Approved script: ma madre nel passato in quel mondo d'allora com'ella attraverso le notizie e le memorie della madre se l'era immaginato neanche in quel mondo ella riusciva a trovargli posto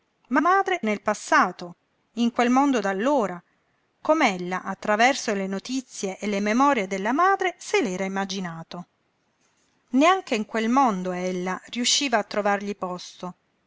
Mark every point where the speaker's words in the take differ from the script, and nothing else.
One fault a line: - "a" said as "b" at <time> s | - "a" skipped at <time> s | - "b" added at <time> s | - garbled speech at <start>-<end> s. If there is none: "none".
none